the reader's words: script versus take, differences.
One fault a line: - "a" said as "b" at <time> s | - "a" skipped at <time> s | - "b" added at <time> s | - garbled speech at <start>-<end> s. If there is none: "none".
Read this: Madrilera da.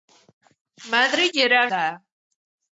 none